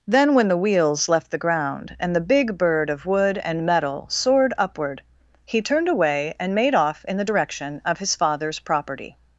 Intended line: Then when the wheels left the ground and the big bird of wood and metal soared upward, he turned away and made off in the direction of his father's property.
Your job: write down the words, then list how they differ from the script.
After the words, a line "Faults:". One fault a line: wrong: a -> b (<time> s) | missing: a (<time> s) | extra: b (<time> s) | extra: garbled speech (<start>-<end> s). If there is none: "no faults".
Then when the wheels left the ground and the big bird of wood and metal soared upward, he turned away and made off in the direction of his father's property.
Faults:
no faults